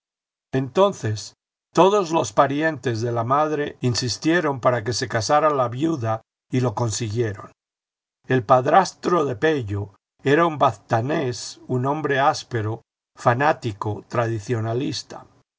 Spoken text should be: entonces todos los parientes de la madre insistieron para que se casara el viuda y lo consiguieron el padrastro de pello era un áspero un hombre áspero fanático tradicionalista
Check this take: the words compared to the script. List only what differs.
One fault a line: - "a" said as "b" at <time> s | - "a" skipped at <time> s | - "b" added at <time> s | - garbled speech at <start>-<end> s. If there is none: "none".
- "el" said as "la" at 5.5 s
- "áspero" said as "baztanés" at 10.6 s